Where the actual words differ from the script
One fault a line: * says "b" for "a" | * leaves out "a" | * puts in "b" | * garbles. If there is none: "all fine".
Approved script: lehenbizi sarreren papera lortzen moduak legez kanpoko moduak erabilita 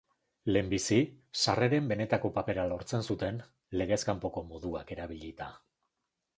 * puts in "benetako"
* says "zuten" for "moduak"